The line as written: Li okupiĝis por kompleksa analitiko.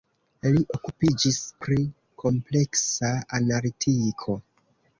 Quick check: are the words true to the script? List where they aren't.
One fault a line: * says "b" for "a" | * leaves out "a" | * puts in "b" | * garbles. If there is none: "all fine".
* says "pri" for "por"